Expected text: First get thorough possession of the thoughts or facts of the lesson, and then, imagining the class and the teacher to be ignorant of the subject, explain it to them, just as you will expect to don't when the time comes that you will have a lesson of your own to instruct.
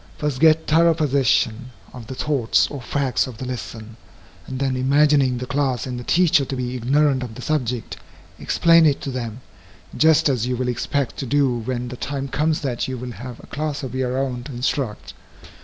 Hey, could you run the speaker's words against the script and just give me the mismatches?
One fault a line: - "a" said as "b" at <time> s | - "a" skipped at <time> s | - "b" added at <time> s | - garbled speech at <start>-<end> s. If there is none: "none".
- "don't" said as "do" at 11.3 s
- "lesson" said as "class" at 13.5 s